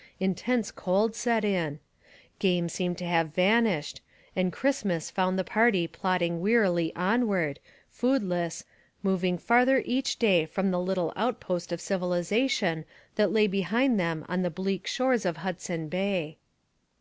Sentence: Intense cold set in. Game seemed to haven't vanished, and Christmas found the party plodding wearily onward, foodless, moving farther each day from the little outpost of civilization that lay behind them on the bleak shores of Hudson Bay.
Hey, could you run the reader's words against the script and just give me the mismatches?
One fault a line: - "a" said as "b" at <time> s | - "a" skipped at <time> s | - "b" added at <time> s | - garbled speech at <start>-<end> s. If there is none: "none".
- "haven't" said as "have" at 3.0 s